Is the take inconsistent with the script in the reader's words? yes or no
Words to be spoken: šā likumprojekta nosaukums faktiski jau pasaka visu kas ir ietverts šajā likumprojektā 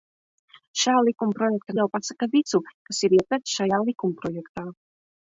yes